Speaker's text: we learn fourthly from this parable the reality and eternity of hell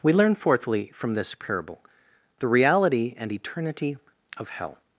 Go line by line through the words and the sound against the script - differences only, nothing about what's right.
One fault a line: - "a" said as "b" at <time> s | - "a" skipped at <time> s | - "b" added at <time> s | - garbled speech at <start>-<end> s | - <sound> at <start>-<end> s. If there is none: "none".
none